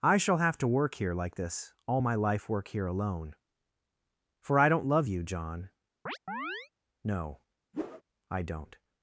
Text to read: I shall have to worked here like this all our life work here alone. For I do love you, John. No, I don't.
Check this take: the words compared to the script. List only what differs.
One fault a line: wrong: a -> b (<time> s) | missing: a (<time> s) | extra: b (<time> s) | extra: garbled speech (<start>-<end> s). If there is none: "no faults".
wrong: worked -> work (0.7 s)
wrong: our -> my (2.0 s)
wrong: do -> don't (4.7 s)